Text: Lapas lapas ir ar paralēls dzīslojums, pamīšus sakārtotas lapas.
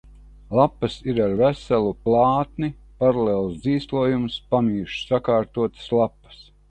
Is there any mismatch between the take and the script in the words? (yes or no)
yes